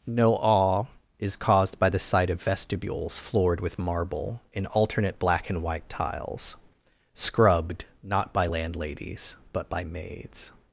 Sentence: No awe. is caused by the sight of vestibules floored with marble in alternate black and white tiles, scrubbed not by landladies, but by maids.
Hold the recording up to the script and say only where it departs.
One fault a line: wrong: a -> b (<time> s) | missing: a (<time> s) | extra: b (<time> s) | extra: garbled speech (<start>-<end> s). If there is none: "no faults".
no faults